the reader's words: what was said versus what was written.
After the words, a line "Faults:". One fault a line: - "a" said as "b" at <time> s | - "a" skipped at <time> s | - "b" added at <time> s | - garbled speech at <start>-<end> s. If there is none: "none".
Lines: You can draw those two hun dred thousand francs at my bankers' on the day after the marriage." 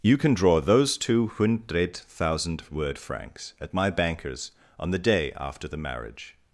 You can draw those two hundred thousand word francs at my bankers' on the day after the marriage."
Faults:
- "hun dred thousand" said as "hundred thousand word" at 1.3 s